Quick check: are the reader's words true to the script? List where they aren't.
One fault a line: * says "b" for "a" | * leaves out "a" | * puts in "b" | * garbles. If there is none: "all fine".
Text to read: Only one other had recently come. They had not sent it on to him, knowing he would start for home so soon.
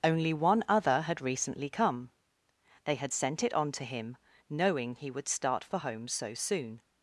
* leaves out "not"